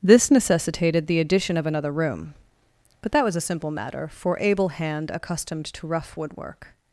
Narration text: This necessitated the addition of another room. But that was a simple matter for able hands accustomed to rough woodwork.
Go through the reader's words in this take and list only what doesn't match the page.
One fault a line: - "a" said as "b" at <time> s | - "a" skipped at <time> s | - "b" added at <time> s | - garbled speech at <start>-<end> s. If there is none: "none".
- "hands" said as "hand" at 4.7 s